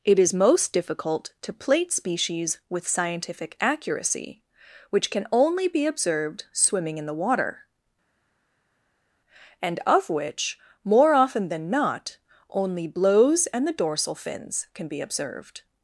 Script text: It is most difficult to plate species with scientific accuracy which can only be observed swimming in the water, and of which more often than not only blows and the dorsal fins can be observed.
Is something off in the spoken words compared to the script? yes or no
no